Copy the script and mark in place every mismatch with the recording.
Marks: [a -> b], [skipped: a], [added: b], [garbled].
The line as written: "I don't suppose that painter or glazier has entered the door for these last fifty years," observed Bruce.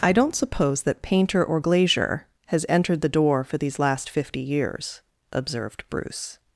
"I don't suppose that painter or glazier has entered the door for these last fifty years," observed Bruce.